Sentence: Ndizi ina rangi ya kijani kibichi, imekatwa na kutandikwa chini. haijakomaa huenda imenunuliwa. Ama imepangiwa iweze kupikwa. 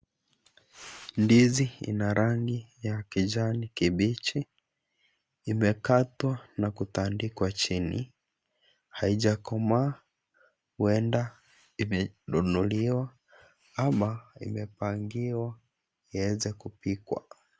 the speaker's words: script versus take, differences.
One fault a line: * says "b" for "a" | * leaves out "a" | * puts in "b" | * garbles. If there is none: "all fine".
all fine